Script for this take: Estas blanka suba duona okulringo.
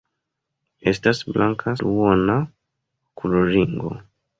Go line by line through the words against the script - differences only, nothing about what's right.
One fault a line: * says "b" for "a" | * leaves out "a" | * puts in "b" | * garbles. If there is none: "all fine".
* leaves out "suba"